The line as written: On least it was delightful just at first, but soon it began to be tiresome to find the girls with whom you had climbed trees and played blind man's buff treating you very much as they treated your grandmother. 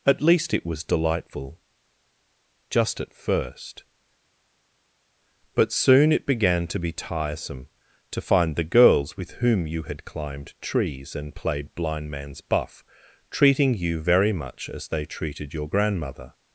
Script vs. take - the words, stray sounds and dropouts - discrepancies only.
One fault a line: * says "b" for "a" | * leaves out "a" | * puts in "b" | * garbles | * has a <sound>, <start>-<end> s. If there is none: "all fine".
* says "At" for "On"